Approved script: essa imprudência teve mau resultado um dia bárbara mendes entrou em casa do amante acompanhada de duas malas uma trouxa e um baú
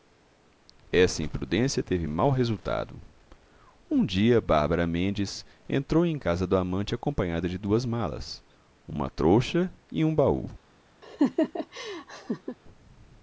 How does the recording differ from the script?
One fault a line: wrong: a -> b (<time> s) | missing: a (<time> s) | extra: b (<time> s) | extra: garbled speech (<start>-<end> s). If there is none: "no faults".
no faults